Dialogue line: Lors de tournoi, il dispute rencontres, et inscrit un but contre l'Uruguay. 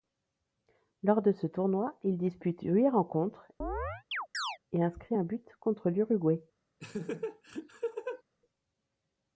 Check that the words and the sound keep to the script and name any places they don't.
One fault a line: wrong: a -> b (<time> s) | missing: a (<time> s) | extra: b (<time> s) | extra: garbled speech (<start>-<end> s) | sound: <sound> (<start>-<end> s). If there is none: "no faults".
extra: ce (1.3 s)
extra: huit (2.6 s)
sound: chirp (3.6-4.6 s)
sound: laugh (6.8-8.2 s)